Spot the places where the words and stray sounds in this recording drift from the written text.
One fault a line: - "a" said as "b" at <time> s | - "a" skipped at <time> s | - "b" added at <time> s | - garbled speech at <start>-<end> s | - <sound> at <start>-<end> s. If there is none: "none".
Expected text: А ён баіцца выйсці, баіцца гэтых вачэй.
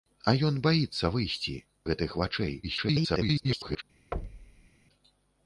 - "баіцца" skipped at 1.5 s
- garbled speech at 2.6-3.8 s
- thud at 4.1-4.7 s